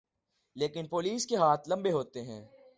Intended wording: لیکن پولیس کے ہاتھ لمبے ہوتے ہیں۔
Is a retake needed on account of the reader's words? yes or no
no